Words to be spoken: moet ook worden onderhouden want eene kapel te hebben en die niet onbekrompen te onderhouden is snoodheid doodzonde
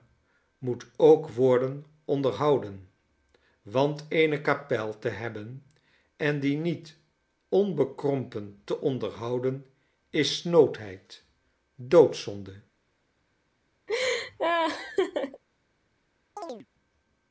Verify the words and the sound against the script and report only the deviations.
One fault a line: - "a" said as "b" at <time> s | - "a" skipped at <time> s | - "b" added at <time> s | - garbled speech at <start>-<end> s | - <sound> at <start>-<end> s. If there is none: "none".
- laugh at 13.9-15.4 s
- chirp at 16.4-16.7 s